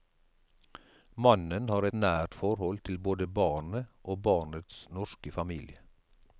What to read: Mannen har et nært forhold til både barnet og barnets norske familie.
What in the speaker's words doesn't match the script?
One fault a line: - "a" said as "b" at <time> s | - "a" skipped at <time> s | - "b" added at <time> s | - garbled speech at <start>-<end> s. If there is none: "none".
- "et" skipped at 1.9 s